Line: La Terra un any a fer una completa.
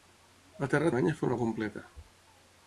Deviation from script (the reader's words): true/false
false